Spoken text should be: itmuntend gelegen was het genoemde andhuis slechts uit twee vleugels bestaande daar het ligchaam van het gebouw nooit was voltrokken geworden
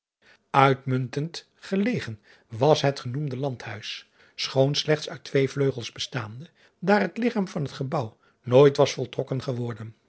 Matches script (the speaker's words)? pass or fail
fail